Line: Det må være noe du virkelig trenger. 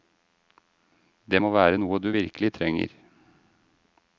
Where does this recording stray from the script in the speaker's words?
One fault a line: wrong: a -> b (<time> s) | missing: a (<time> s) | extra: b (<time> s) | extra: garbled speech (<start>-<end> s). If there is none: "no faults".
no faults